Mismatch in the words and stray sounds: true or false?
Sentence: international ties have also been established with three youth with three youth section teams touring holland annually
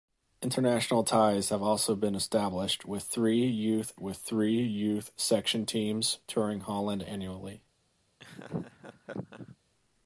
true